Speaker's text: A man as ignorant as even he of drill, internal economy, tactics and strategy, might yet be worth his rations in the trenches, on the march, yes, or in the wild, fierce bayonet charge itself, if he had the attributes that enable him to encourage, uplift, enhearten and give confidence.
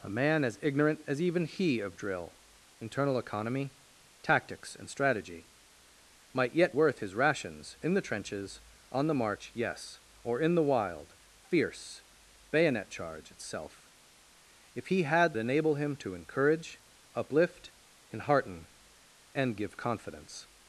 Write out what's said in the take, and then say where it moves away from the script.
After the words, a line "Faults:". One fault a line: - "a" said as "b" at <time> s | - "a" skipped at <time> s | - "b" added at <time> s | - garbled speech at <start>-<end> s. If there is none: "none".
A man as ignorant as even he of drill, internal economy, tactics and strategy, might yet worth his rations in the trenches, on the march, yes, or in the wild, fierce bayonet charge itself, if he had enable him to encourage, uplift, enhearten and give confidence.
Faults:
- "be" skipped at 6.8 s
- "the attributes that" skipped at 15.3 s